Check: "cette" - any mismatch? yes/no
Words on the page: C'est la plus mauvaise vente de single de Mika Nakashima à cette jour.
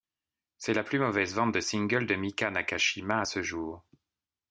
yes